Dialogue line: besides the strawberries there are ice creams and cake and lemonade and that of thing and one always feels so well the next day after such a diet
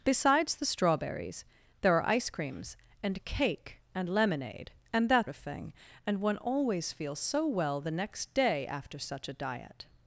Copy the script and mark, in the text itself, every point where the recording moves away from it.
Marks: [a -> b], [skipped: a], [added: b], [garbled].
besides the strawberries there are ice creams and cake and lemonade and that of thing and one always feels so well the next day after such a diet